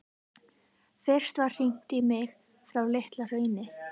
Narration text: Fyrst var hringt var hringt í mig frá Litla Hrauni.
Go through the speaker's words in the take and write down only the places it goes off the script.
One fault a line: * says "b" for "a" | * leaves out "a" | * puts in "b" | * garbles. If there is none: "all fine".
* leaves out "var hringt"